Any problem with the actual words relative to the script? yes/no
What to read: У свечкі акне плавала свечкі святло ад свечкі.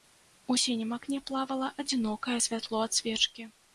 yes